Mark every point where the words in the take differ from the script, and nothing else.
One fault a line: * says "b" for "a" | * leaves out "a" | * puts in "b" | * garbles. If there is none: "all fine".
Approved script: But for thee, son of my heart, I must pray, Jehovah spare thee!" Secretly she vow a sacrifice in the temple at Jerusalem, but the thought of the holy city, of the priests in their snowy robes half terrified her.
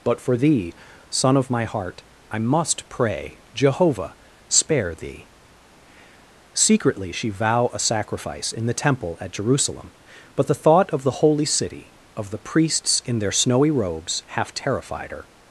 all fine